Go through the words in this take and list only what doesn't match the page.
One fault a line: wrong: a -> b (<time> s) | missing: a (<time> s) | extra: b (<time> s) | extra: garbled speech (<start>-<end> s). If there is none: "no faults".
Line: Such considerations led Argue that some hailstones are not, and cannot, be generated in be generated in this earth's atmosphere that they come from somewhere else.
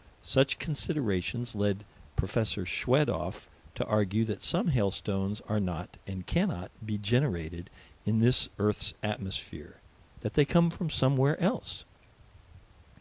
extra: Prof Schwedoff to (2.1 s)
missing: be generated in (8.2 s)